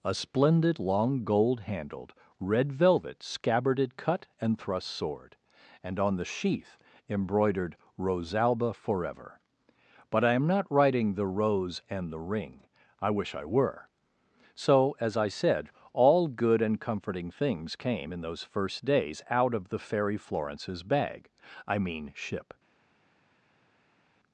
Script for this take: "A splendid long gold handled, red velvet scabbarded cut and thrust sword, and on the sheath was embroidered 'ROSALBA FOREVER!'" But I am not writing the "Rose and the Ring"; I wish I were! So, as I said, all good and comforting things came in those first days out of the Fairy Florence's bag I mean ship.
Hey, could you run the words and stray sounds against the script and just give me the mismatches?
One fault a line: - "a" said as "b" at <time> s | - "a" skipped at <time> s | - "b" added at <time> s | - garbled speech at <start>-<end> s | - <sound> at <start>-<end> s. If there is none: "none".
- "was" skipped at 6.8 s